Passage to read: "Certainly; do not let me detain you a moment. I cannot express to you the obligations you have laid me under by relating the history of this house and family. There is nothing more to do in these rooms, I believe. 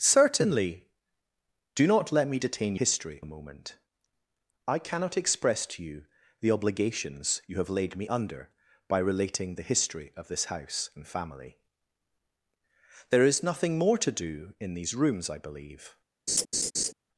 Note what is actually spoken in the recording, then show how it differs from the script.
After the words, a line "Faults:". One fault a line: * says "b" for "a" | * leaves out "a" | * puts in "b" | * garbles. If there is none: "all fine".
"Certainly; do not let me detain history a moment. I cannot express to you the obligations you have laid me under by relating the history of this house and family. There is nothing more to do in these rooms, I believe.
Faults:
* says "history" for "you"